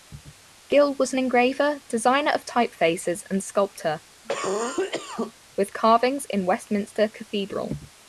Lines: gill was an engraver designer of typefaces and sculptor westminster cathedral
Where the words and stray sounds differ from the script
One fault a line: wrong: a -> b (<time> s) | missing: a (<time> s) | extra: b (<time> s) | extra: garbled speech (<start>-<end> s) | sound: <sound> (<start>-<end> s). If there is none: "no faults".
sound: cough (4.2-5.3 s)
extra: with carvings in (5.6 s)